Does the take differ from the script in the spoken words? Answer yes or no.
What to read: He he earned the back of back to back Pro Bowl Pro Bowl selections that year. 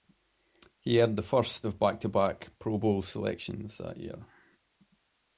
yes